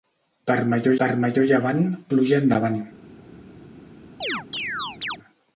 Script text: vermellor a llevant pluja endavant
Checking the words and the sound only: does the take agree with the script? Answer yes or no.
no